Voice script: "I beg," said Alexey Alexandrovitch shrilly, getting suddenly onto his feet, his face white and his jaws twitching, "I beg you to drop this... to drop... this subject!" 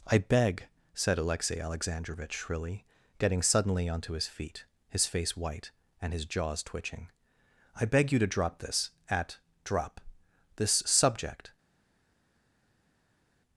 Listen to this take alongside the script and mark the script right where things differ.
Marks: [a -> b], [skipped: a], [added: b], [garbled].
"I beg," said Alexey Alexandrovitch shrilly, getting suddenly onto his feet, his face white and his jaws twitching, "I beg you to drop this... [to -> at] drop... this subject!"